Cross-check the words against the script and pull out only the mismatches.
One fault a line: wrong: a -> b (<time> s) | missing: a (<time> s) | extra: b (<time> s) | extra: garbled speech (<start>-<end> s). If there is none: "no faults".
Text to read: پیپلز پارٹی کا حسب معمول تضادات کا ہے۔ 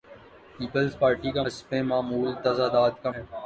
no faults